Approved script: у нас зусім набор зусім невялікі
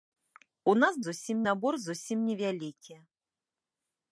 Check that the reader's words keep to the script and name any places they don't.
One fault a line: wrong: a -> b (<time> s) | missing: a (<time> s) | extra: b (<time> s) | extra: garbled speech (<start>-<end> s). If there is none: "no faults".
no faults